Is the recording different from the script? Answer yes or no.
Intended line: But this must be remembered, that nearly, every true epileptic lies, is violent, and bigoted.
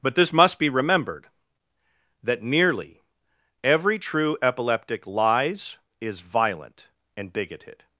no